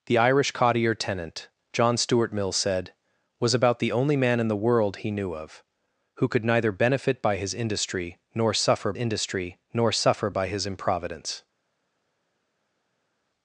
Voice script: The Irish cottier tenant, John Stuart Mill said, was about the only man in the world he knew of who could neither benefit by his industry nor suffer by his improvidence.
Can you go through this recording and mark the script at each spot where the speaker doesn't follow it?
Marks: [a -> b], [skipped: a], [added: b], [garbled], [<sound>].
The Irish cottier tenant, John Stuart Mill said, was about the only man in the world he knew of who could neither benefit by his industry nor suffer [added: industry nor suffer] by his improvidence.